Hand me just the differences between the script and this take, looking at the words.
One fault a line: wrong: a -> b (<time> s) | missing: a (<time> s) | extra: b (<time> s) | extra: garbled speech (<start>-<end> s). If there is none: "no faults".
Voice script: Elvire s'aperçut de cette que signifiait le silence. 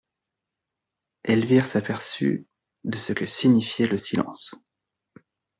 wrong: cette -> ce (3.0 s)